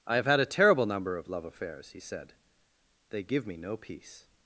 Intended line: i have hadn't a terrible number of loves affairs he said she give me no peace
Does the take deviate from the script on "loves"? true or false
true